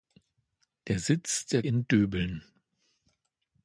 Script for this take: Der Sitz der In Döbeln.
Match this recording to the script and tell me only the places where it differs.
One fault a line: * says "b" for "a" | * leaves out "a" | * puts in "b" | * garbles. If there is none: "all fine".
all fine